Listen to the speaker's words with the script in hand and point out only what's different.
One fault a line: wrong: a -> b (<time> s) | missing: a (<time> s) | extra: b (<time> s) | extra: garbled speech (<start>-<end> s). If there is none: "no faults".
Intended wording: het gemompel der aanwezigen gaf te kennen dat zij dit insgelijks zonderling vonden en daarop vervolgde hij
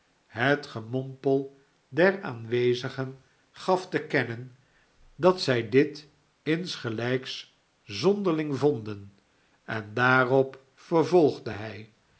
no faults